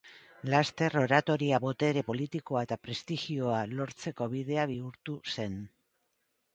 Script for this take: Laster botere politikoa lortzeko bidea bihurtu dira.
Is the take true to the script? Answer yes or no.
no